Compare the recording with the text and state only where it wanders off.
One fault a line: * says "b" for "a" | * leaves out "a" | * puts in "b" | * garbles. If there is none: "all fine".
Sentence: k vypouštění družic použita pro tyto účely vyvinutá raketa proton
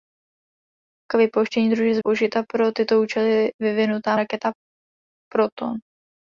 all fine